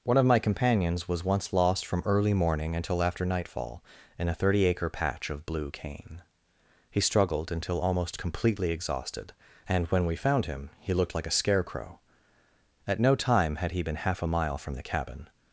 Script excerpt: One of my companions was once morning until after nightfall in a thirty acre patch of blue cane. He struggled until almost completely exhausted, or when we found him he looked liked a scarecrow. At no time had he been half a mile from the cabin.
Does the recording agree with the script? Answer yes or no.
no